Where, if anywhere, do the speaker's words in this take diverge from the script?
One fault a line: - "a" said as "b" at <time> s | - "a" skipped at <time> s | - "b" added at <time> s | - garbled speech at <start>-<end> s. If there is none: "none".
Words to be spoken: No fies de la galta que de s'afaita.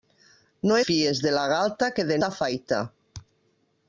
none